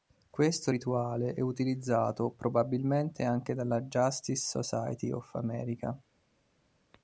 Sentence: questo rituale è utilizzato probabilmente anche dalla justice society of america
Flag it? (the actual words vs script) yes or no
no